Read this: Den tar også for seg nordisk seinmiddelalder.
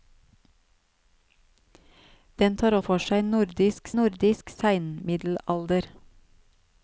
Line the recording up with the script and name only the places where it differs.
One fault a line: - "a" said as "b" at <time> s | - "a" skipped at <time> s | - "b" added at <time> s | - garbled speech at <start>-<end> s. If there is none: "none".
- "også" skipped at 2.8 s
- "nordisk" added at 4.0 s